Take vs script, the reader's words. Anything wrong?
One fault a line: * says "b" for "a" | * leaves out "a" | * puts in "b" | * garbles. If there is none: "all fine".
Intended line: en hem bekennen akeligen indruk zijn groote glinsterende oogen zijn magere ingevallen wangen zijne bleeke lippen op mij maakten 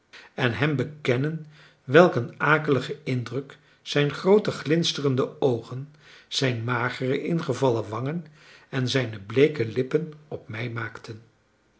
* puts in "welk een"
* puts in "en"